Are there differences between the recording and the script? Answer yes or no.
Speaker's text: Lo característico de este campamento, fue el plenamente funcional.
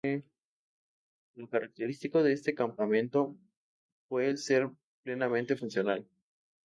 yes